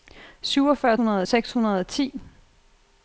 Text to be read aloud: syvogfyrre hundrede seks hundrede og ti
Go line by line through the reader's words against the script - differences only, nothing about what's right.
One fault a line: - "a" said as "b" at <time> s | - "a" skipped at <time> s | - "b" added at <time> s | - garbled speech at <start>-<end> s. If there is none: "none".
none